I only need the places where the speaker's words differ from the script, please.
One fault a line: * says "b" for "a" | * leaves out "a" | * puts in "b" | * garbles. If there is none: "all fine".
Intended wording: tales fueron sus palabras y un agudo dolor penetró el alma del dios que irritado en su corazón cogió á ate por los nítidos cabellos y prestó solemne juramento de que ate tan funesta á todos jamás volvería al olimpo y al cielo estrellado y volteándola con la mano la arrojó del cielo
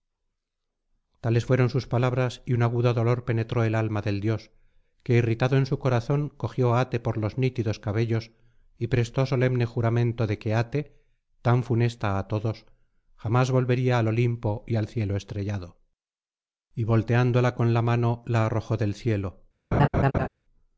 all fine